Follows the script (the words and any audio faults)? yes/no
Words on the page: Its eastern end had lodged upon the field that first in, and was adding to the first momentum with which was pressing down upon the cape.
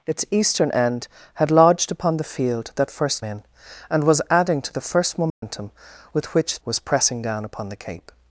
no